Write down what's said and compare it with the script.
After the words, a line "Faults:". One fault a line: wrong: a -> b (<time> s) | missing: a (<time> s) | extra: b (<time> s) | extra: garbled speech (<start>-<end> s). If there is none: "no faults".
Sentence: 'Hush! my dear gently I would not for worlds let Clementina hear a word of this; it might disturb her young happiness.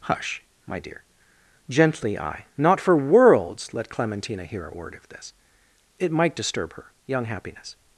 'Hush! my dear gently I not for worlds let Clementina hear a word of this; it might disturb her young happiness.
Faults:
missing: would (2.5 s)